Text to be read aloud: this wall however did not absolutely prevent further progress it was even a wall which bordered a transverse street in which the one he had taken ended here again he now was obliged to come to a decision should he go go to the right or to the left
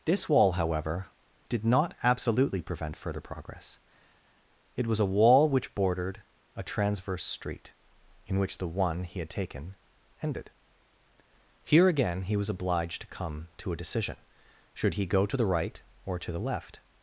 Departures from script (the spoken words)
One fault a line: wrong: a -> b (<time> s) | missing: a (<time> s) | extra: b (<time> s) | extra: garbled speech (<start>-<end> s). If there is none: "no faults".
missing: even (5.0 s)
missing: now (12.4 s)
missing: go (15.2 s)